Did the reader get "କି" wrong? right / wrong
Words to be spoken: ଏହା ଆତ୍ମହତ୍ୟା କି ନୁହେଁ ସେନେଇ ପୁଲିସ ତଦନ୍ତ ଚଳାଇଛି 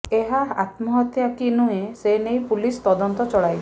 right